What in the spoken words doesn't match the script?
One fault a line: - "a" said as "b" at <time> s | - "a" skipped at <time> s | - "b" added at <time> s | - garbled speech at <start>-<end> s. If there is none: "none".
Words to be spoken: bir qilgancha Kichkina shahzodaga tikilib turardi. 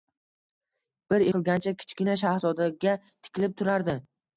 none